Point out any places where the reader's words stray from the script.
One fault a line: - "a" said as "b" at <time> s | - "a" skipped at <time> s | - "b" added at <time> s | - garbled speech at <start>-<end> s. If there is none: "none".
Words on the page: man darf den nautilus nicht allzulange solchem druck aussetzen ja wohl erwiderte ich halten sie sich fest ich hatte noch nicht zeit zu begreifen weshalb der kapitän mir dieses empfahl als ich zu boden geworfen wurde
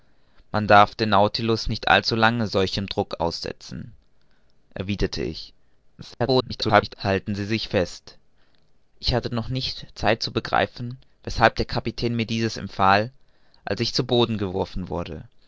- "ja wohl" skipped at 3.9 s
- garbled speech at 6.0-6.9 s